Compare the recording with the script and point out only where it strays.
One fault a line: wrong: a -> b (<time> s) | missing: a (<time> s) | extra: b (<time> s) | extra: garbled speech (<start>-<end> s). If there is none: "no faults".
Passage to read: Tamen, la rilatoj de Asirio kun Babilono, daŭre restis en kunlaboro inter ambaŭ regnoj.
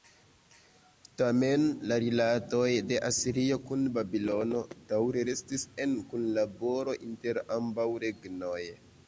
no faults